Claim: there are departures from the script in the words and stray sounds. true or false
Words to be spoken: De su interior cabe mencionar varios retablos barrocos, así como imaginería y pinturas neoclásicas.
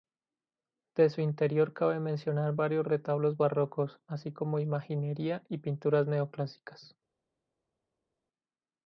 false